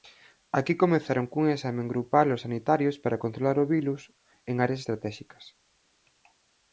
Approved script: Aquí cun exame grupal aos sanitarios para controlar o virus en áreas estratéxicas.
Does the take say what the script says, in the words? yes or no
no